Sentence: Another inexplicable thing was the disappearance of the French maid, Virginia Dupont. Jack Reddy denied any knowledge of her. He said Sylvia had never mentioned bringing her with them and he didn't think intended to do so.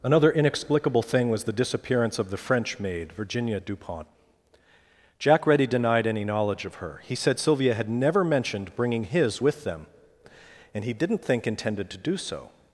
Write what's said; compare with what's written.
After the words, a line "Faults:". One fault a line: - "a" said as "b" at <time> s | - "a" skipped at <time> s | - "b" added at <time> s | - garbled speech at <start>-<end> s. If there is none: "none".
Another inexplicable thing was the disappearance of the French maid, Virginia Dupont. Jack Reddy denied any knowledge of her. He said Sylvia had never mentioned bringing his with them and he didn't think intended to do so.
Faults:
- "her" said as "his" at 9.0 s